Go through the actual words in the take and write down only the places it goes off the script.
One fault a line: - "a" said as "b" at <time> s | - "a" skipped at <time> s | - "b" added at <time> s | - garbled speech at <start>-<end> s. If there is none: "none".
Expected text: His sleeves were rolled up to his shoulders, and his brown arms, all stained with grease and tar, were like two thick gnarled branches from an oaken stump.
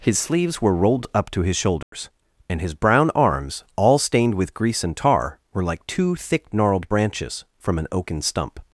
none